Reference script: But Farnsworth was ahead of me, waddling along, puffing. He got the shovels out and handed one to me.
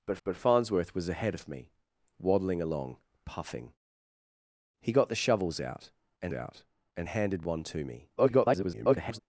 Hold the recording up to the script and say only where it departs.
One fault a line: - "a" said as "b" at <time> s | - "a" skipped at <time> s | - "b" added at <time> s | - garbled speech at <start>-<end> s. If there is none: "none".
- "but" added at 0.2 s
- "out and" added at 6.3 s
- garbled speech at 8.2-9.2 s